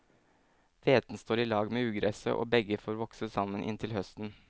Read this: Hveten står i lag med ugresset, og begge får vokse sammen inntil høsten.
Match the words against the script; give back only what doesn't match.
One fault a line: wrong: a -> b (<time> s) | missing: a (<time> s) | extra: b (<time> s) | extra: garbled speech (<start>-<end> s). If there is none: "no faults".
no faults